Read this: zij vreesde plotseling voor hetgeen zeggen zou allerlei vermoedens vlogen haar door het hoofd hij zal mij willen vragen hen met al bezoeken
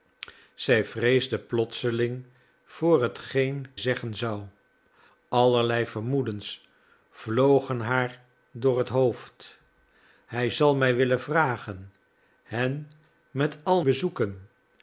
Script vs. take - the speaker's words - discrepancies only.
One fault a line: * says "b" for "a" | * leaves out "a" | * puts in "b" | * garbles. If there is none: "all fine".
all fine